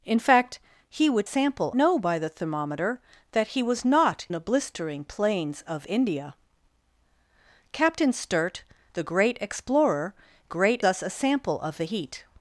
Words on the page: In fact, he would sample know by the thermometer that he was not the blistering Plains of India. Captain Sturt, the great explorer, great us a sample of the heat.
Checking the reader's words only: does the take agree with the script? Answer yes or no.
yes